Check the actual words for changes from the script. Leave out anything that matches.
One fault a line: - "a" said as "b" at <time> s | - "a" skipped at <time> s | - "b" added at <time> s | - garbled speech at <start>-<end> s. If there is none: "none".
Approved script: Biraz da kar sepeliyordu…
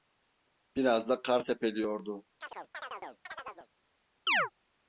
none